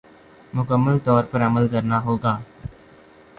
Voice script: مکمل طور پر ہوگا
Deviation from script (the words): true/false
true